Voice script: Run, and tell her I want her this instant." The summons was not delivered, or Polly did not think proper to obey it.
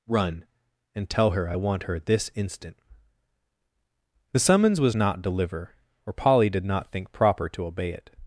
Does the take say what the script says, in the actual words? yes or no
no